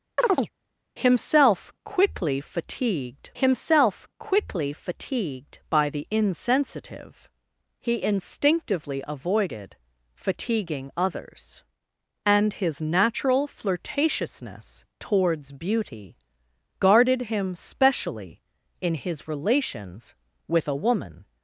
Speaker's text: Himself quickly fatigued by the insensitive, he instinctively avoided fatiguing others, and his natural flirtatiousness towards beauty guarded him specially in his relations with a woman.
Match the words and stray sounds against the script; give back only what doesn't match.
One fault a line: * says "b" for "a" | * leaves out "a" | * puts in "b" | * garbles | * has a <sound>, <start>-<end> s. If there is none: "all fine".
* has a chirp, 0.2-0.5 s
* puts in "himself quickly fatigued"